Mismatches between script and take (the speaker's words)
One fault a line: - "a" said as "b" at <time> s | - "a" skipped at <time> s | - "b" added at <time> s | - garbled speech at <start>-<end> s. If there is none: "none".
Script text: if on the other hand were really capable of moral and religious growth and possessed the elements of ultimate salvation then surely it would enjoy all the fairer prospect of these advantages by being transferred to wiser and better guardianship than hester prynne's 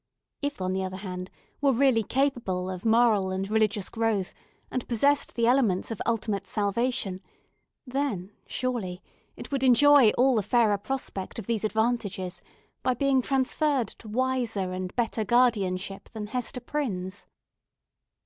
none